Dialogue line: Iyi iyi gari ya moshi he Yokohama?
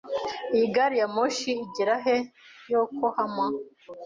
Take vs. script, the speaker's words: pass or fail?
fail